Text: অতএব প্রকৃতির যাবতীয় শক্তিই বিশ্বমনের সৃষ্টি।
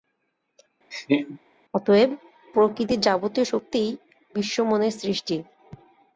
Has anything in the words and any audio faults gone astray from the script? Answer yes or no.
yes